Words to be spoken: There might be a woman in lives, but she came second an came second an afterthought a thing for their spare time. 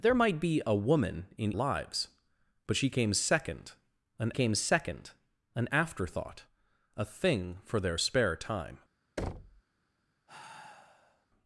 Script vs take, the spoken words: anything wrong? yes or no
no